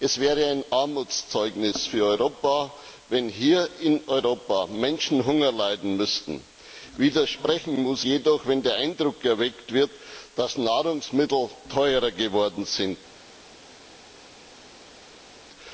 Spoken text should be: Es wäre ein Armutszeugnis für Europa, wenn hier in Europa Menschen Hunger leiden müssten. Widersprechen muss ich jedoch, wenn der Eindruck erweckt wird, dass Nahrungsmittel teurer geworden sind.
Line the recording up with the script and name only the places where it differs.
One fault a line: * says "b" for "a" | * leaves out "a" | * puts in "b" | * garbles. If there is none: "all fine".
* leaves out "ich"